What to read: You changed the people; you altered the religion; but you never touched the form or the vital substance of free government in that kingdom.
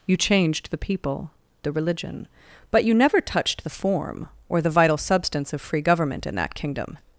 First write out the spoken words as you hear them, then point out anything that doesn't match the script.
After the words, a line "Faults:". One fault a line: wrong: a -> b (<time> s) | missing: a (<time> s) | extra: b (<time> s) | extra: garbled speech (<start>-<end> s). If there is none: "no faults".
You changed the people; the religion; but you never touched the form or the vital substance of free government in that kingdom.
Faults:
missing: you altered (1.3 s)